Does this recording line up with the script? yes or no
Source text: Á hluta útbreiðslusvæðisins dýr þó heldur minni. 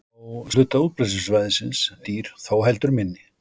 yes